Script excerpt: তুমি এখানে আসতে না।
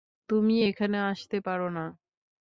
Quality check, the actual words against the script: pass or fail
fail